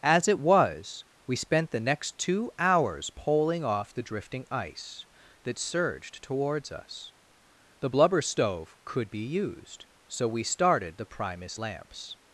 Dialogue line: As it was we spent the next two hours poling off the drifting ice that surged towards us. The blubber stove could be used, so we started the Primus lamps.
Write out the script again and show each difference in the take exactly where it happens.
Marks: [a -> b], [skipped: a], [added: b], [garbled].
As it was we spent the next two hours poling off the drifting ice that surged towards us. The blubber stove could be used, so we started the Primus lamps.